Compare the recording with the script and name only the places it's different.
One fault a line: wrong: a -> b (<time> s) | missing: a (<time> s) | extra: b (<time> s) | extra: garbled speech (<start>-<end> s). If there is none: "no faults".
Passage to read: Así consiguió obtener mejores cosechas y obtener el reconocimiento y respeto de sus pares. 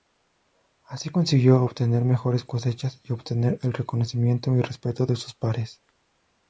no faults